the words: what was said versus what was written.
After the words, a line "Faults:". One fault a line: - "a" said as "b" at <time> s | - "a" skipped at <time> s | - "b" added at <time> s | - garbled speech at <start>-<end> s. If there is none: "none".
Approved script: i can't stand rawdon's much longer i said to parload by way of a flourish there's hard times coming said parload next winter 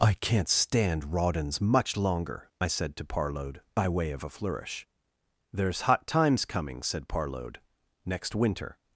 i can't stand rawdon's much longer i said to parload by way of a flourish there's hot times coming said parload next winter
Faults:
- "hard" said as "hot" at 5.8 s